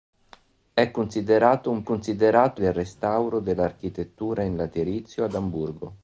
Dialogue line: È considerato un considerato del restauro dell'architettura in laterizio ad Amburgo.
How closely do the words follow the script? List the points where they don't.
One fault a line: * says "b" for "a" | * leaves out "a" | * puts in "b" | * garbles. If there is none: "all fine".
all fine